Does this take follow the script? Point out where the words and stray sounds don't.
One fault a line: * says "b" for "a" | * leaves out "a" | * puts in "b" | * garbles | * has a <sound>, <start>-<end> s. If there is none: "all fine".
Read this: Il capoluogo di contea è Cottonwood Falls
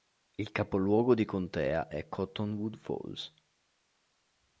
all fine